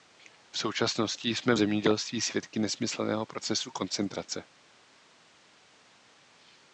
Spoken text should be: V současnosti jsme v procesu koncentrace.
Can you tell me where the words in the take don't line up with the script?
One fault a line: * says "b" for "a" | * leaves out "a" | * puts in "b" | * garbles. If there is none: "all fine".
* puts in "zemědělství svědky nesmyslného"